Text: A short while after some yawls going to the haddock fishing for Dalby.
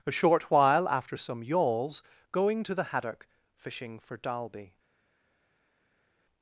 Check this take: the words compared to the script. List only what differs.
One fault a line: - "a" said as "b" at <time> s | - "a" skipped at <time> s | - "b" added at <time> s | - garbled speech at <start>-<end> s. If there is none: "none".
none